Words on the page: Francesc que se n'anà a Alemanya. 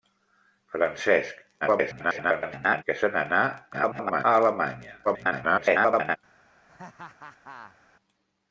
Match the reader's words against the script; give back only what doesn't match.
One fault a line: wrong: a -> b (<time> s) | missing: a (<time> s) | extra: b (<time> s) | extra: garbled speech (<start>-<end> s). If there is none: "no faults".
extra: garbled speech (1.6-2.8 s)
extra: garbled speech (3.7-4.2 s)
extra: garbled speech (5.0-6.2 s)